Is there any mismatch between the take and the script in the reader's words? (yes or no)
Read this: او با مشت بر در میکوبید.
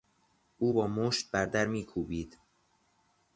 no